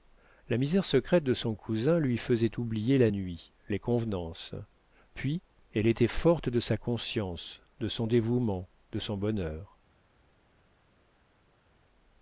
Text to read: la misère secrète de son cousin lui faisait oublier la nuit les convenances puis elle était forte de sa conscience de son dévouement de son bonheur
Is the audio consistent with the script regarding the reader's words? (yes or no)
yes